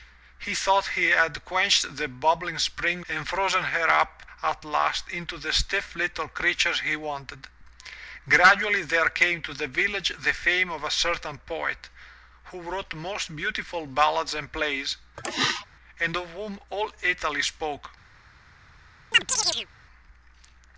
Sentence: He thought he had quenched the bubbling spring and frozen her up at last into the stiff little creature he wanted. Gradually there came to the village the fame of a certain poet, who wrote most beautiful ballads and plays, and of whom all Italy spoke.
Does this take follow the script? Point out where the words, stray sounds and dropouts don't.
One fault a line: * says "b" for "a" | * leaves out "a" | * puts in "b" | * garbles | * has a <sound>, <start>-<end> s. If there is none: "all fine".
* has a throat clearing, 15.2-15.7 s
* has a chirp, 19.1-19.7 s